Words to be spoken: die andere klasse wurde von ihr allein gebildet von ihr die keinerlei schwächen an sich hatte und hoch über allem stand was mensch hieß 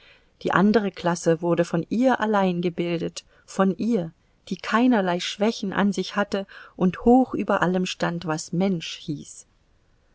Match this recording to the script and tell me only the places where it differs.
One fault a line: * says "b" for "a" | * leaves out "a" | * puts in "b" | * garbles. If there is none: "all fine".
all fine